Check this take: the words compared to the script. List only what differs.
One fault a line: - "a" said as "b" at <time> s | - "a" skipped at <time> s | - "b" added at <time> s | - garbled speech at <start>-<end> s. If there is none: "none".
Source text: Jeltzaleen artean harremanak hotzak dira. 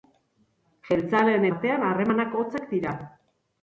none